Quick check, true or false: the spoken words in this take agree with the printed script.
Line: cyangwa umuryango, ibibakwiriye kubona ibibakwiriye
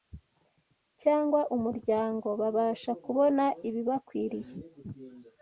false